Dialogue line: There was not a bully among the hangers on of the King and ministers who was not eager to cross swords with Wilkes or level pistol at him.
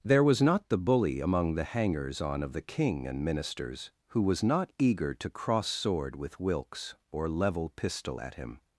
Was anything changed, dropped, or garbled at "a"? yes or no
yes